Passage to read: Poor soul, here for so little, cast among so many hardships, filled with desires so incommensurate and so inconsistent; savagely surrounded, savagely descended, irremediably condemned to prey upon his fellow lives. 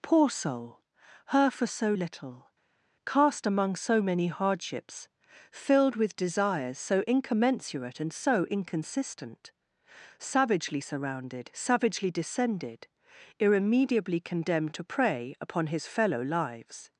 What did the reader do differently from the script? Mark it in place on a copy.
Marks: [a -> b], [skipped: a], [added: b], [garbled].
Poor soul, [here -> her] for so little, cast among so many hardships, filled with desires so incommensurate and so inconsistent; savagely surrounded, savagely descended, irremediably condemned to prey upon his fellow lives.